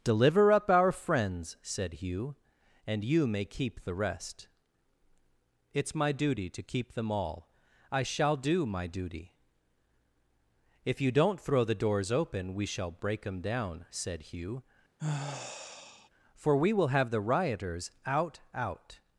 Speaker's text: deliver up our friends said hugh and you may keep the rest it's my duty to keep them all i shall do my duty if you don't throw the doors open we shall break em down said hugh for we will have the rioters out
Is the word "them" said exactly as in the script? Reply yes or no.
yes